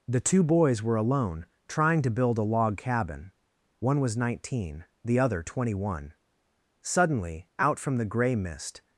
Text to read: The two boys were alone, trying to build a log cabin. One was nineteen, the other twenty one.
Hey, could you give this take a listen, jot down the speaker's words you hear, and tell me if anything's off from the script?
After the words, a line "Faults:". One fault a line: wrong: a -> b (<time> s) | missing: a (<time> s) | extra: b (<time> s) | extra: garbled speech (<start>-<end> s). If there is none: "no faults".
The two boys were alone, trying to build a log cabin. One was nineteen, the other twenty one. Suddenly, out from the gray mist
Faults:
extra: Suddenly out from the gray mist (6.8 s)